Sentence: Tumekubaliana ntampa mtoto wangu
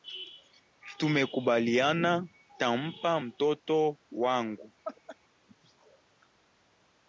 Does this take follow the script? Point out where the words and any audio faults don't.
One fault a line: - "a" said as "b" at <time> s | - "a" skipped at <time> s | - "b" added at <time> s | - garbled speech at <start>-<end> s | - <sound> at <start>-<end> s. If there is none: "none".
- laugh at 4.8-5.2 s